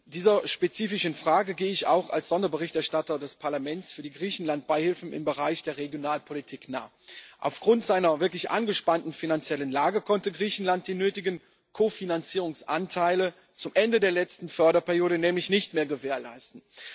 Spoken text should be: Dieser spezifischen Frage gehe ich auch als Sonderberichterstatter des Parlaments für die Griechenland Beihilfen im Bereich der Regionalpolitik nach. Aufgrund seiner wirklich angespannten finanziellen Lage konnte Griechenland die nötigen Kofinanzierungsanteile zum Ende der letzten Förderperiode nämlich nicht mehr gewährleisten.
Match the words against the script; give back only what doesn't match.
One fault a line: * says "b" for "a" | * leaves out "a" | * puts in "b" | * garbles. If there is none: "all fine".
all fine